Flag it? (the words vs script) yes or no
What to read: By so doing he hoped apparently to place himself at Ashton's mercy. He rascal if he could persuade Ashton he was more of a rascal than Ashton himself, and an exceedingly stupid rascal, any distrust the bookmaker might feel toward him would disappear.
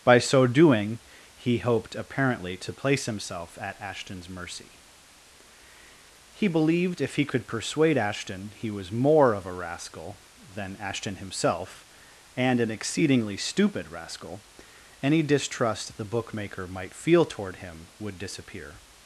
yes